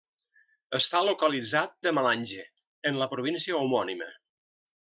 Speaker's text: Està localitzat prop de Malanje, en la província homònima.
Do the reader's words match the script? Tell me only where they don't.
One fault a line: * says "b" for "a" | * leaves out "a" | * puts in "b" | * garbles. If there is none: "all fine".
* leaves out "prop"